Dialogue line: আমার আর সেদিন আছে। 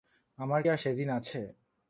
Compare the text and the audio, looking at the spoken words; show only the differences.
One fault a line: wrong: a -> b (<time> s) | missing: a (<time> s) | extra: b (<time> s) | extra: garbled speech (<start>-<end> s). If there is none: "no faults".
no faults